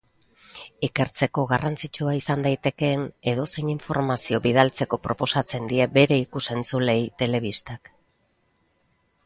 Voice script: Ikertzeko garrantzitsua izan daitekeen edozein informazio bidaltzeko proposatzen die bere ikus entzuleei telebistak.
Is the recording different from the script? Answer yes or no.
no